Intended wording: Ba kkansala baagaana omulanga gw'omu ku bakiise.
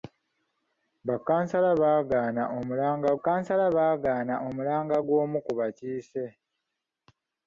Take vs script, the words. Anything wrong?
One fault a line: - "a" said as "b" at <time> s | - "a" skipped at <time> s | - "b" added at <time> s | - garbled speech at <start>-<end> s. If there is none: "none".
- "kkansala baagaana omulanga" added at 3.2 s